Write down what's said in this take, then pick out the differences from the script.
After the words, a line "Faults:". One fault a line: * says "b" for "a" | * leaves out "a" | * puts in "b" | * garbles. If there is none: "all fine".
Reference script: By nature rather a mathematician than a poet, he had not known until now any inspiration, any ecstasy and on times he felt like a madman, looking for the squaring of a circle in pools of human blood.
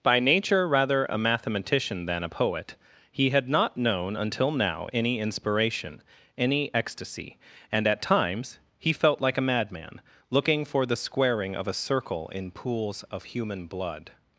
By nature rather a mathematician than a poet, he had not known until now any inspiration, any ecstasy and at times he felt like a madman, looking for the squaring of a circle in pools of human blood.
Faults:
* says "at" for "on"